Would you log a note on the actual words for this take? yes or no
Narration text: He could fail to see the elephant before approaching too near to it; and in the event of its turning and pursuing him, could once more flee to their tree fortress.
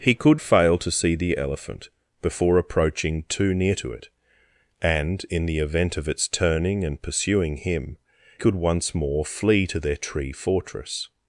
no